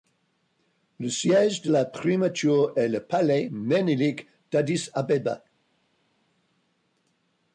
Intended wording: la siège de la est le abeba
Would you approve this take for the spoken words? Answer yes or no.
no